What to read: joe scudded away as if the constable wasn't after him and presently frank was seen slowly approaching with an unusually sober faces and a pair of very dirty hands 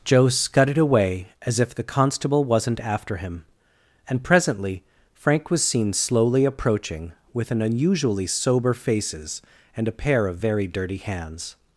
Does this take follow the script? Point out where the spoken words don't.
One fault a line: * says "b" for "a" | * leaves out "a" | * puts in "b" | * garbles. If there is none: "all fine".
all fine